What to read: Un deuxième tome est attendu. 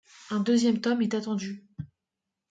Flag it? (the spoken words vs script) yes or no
no